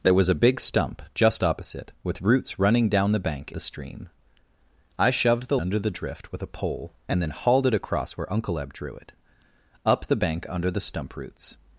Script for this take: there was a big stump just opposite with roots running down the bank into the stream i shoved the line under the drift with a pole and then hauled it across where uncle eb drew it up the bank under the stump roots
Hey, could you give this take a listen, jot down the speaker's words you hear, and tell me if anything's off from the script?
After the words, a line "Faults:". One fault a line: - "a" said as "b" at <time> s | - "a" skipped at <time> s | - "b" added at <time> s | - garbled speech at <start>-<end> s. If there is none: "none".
there was a big stump just opposite with roots running down the bank the stream i shoved the under the drift with a pole and then hauled it across where uncle eb drew it up the bank under the stump roots
Faults:
- "into" skipped at 3.5 s
- "line" skipped at 5.6 s